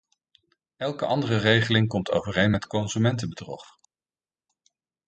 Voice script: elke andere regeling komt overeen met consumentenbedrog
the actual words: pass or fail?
pass